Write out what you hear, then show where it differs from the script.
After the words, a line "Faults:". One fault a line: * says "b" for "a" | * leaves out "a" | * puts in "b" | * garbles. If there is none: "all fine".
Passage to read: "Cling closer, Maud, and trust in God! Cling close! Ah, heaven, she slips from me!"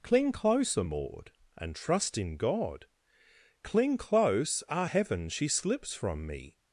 "Cling closer, Maud, and trust in God! Cling close! Ah, heaven, she slips from me!"
Faults:
all fine